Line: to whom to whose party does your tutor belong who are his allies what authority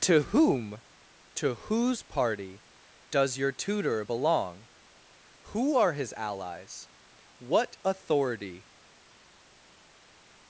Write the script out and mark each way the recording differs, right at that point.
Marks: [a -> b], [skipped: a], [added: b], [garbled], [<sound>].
to whom to whose party does your tutor belong who are his allies what authority